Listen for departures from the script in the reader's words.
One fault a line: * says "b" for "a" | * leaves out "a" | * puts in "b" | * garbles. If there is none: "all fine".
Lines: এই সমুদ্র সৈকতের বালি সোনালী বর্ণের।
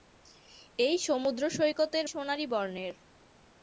* leaves out "বালি"